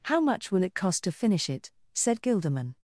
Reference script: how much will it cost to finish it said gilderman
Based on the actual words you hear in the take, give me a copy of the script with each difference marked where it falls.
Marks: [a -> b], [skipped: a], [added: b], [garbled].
how much will it cost to finish it said gilderman